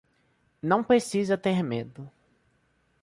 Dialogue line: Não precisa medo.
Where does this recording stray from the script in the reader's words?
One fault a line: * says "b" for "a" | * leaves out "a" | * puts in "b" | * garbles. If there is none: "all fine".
* puts in "ter"